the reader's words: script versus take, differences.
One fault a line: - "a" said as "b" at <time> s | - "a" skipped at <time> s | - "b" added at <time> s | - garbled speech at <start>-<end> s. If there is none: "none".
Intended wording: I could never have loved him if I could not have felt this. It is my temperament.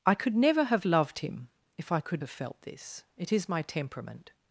- "not" skipped at 2.2 s